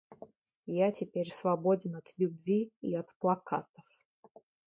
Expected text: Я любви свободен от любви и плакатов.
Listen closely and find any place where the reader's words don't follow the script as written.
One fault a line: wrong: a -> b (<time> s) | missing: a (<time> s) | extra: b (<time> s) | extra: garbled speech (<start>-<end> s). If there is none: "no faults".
wrong: любви -> теперь (0.9 s)
extra: от (3.0 s)